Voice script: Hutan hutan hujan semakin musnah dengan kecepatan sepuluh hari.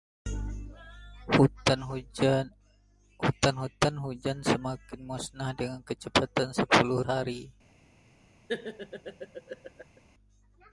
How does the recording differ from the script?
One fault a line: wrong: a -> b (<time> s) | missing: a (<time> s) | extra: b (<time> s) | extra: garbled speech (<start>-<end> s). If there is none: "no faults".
no faults